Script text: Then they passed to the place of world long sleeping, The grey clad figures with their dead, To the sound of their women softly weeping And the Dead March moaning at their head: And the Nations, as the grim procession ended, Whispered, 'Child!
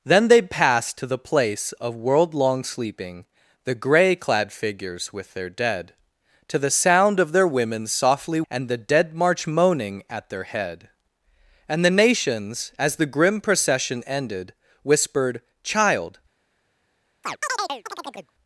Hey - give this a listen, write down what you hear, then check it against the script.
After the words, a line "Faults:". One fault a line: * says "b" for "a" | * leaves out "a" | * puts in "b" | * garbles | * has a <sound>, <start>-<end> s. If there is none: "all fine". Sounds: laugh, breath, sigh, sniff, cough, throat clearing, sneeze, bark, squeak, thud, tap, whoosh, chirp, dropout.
Then they passed to the place of world long sleeping, The grey clad figures with their dead, To the sound of their women softly And the Dead March moaning at their head: And the Nations, as the grim procession ended, Whispered, 'Child!
Faults:
* leaves out "weeping"
* has a chirp, 17.2-18.3 s